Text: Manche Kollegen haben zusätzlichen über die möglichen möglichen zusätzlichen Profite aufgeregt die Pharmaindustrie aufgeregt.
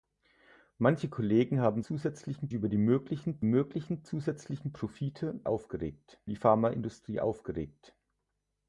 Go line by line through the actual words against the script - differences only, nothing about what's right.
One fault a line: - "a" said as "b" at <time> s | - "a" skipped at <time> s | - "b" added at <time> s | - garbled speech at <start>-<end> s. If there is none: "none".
none